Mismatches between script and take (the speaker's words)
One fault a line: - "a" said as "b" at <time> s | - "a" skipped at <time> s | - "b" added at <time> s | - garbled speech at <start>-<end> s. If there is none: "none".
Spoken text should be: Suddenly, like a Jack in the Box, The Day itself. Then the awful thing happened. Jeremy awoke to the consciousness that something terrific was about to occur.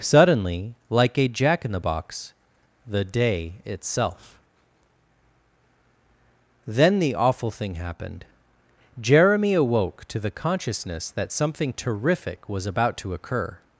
none